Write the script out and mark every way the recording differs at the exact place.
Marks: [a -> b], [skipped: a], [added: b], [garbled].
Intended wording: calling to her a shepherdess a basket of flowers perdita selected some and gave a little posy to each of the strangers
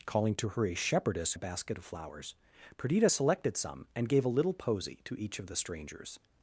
calling to her a shepherdess a basket of flowers perdita selected some and gave a little posy to each of the strangers